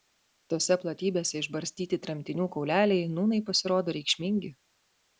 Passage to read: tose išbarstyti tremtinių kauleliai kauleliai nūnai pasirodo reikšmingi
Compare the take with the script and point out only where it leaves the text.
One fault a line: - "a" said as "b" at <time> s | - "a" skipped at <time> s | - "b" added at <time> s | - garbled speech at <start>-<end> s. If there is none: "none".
- "platybėse" added at 0.8 s
- "kauleliai" skipped at 3.1 s